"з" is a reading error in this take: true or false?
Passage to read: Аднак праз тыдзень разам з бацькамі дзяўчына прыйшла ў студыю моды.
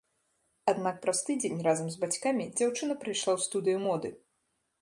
false